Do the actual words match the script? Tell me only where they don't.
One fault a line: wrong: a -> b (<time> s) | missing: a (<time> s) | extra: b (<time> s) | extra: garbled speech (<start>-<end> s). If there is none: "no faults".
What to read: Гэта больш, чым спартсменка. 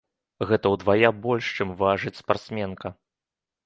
extra: ўдвая (0.7 s)
extra: важыць (1.8 s)